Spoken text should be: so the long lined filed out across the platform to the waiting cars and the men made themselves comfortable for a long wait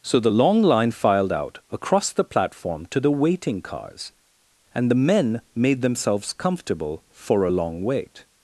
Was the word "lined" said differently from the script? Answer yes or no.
yes